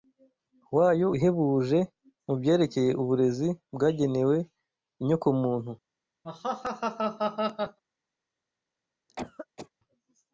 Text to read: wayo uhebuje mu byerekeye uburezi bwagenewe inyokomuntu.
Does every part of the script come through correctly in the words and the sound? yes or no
no